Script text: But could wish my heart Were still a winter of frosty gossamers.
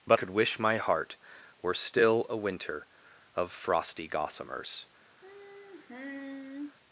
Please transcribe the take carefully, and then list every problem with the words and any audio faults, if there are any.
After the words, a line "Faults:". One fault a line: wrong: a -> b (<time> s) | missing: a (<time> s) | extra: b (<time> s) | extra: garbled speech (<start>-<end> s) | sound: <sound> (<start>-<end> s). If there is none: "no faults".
But could wish my heart Were still a winter of frosty gossamers.
Faults:
sound: sigh (5.2-6.8 s)